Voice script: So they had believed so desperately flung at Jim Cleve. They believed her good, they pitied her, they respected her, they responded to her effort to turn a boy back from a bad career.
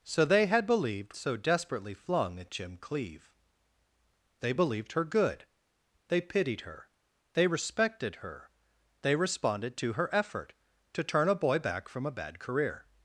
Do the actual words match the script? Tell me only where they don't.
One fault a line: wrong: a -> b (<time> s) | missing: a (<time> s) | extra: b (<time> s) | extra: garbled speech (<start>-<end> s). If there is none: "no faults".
no faults